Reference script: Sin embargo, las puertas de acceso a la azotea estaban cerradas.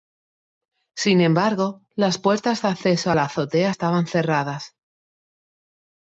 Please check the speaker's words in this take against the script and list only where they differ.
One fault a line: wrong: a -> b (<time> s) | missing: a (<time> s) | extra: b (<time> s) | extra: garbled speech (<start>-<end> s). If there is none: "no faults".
no faults